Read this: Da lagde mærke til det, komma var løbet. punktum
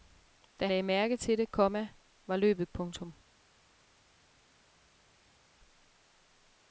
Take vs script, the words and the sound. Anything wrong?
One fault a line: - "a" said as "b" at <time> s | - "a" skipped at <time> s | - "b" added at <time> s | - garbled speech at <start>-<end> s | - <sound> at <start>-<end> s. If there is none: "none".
none